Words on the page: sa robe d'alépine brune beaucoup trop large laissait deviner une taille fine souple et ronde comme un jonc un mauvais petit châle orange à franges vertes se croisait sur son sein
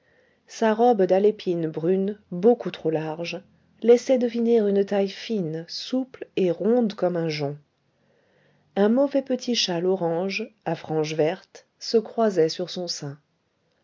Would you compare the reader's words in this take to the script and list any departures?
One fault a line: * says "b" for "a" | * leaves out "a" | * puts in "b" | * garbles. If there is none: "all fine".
all fine